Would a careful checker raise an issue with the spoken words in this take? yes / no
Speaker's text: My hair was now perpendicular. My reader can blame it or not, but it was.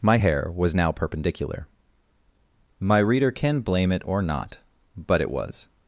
no